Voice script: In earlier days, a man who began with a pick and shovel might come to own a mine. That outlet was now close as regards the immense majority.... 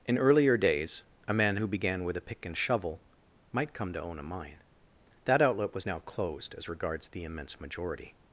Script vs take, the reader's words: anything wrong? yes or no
yes